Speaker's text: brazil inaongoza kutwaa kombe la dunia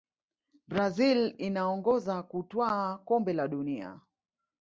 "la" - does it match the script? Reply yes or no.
yes